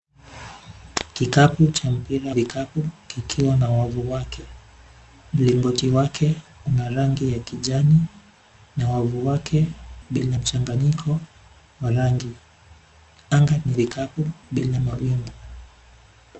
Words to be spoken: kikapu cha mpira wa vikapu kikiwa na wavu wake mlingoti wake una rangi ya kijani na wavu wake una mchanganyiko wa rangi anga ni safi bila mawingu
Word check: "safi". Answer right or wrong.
wrong